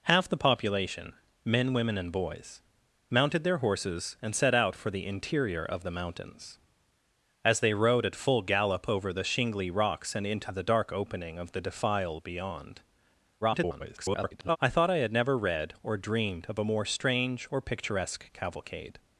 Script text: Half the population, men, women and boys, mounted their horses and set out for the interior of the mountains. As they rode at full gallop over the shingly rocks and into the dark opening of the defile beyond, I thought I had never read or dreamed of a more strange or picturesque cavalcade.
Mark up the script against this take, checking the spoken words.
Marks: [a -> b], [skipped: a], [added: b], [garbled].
Half the population, men, women and boys, mounted their horses and set out for the interior of the mountains. As they rode at full gallop over the shingly rocks and into the dark opening of the defile beyond, [garbled] I thought I had never read or dreamed of a more strange or picturesque cavalcade.